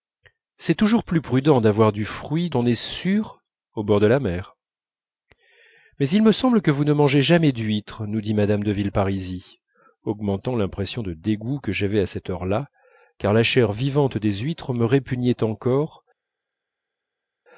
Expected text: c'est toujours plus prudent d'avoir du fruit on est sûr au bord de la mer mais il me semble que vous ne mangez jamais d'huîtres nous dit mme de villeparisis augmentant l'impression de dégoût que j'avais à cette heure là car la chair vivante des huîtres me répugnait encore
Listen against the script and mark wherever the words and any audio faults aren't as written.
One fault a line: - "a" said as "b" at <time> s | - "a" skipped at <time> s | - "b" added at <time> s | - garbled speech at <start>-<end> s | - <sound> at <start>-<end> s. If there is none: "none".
none